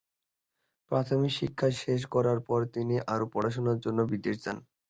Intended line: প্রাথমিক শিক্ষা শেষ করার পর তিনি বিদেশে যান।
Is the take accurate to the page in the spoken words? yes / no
no